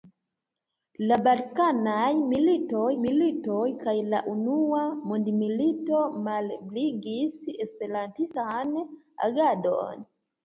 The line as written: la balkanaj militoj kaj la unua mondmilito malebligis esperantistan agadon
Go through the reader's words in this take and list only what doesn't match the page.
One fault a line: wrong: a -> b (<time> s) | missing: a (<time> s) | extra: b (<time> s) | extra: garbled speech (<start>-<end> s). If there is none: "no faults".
extra: militoj (3.0 s)